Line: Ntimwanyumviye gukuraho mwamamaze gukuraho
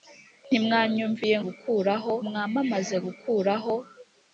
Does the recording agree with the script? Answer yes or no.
yes